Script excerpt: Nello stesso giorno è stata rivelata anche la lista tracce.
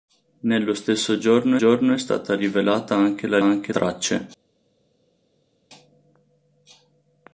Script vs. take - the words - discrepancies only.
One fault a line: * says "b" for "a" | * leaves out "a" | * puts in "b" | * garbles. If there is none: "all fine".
* puts in "giorno"
* says "anche" for "lista"